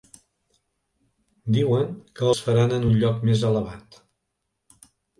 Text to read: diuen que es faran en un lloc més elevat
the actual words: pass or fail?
pass